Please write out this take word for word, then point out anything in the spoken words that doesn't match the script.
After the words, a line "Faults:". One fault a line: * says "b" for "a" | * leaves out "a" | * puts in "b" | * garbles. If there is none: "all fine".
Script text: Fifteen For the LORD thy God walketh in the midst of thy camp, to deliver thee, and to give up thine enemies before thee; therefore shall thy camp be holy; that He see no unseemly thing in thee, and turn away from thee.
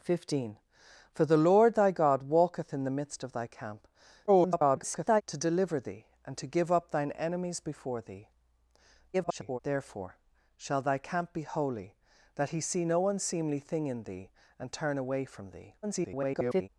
Fifteen For the LORD thy God walketh in the midst of thy camp, [garbled] to deliver thee, and to give up thine enemies before thee; [garbled] therefore shall thy camp be holy; that He see no unseemly thing in thee, and turn away from thee. [garbled]
Faults:
* garbles
* garbles
* garbles